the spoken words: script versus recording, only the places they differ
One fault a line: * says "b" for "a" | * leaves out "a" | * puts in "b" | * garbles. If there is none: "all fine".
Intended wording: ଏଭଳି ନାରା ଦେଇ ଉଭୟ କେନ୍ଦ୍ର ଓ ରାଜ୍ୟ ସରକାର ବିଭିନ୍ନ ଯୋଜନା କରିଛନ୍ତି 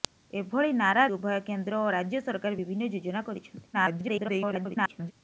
* leaves out "ଦେଇ"
* garbles